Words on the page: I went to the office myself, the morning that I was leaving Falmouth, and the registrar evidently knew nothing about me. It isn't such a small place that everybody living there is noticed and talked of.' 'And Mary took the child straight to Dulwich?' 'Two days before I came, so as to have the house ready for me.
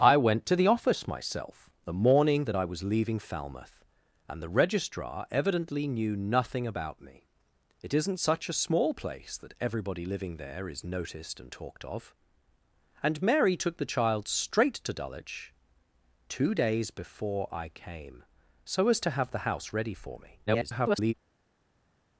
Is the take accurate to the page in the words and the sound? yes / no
no